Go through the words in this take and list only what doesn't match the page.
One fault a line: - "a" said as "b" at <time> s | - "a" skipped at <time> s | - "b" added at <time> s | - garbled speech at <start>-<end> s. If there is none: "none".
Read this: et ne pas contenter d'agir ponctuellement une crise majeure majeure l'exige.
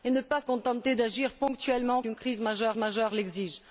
none